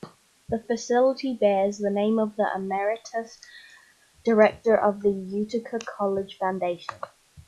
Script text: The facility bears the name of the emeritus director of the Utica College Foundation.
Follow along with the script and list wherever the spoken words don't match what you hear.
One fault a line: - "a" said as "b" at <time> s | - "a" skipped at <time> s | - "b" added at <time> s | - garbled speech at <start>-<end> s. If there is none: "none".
none